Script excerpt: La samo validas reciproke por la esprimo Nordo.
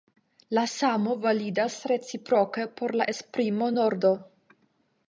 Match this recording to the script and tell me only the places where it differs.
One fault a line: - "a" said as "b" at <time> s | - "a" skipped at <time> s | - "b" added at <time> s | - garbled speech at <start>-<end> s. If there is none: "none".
none